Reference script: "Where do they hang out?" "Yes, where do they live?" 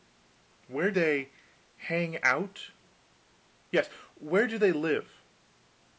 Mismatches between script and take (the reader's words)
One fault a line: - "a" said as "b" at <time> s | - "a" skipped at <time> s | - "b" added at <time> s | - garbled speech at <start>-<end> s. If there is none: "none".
- "do" skipped at 0.9 s